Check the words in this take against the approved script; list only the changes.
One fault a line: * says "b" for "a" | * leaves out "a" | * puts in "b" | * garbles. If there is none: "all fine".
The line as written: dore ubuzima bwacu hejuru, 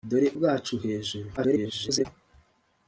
* leaves out "ubuzima"
* garbles